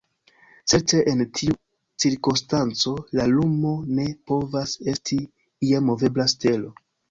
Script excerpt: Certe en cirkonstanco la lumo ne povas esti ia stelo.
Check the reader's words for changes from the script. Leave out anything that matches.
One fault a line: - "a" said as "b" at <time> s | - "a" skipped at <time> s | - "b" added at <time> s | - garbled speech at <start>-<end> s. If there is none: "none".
- "tiu" added at 1.4 s
- "movebla" added at 5.9 s